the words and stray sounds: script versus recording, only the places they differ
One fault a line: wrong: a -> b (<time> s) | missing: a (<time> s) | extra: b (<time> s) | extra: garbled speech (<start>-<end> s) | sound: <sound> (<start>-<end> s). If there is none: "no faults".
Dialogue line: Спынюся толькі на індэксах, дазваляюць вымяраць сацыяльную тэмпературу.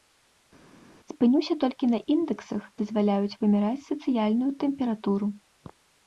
no faults